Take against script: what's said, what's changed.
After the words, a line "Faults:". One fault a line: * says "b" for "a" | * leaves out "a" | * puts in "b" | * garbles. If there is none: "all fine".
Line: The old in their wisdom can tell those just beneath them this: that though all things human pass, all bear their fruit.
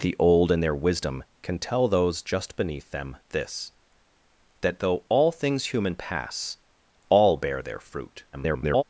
The old in their wisdom can tell those just beneath them this: that though all things human pass, all bear their fruit. [garbled]
Faults:
* garbles